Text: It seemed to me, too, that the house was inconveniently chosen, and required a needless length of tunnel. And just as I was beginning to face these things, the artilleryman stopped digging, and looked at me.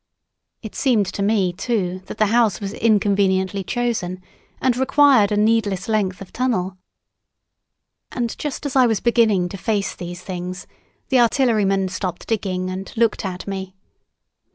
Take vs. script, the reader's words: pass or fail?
pass